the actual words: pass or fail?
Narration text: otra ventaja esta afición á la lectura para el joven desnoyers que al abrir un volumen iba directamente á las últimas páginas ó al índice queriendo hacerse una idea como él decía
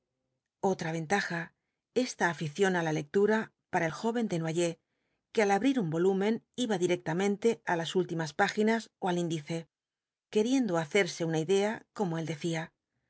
pass